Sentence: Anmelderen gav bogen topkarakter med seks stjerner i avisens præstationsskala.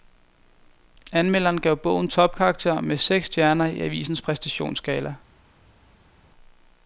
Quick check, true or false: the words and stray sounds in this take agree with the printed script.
true